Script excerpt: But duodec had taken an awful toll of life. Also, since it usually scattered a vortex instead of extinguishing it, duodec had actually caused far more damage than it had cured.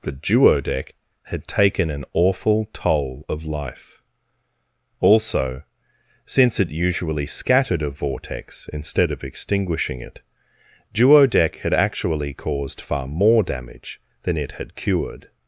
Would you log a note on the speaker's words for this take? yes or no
no